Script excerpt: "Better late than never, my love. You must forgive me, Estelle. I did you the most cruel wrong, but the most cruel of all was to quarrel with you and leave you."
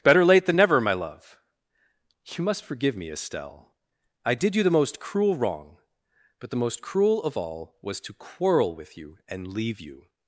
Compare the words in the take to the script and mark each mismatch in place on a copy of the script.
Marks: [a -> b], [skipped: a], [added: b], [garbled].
"Better late than never, my love. You must forgive me, Estelle. I did you the most cruel wrong, but the most cruel of all was to quarrel with you and leave you."